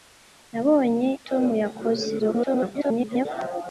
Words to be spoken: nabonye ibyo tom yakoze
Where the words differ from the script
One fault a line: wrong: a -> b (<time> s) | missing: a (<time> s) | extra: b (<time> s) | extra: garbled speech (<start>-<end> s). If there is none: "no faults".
missing: ibyo (1.1 s)
extra: garbled speech (2.2-3.3 s)